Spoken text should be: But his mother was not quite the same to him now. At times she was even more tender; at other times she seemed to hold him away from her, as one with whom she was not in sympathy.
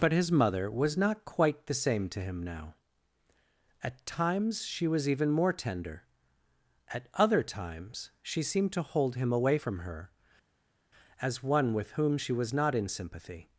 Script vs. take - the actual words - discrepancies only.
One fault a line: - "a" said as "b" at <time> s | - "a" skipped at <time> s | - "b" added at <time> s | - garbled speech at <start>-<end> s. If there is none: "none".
none